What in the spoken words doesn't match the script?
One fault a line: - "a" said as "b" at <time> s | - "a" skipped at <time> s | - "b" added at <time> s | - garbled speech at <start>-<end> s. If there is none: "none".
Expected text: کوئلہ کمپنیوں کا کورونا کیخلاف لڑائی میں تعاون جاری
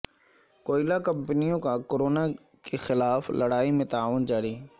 none